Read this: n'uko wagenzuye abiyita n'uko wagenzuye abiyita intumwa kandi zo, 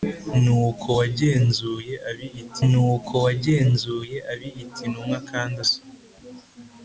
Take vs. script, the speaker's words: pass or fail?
pass